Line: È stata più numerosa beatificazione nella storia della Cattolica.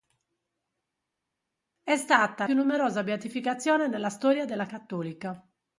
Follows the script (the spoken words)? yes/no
yes